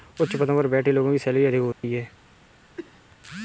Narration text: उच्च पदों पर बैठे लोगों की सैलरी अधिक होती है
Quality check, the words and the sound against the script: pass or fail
fail